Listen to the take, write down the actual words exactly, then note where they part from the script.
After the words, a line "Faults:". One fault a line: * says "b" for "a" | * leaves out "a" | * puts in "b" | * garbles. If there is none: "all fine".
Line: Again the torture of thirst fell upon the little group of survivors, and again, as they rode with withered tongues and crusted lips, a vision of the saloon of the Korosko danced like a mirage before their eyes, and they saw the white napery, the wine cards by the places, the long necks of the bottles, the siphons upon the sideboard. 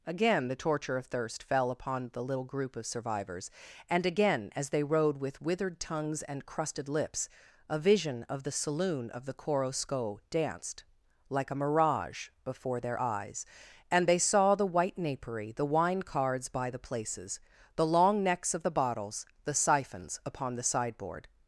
Again the torture of thirst fell upon the little group of survivors, and again, as they rode with withered tongues and crusted lips, a vision of the saloon of the Korosko danced like a mirage before their eyes, and they saw the white napery, the wine cards by the places, the long necks of the bottles, the siphons upon the sideboard.
Faults:
all fine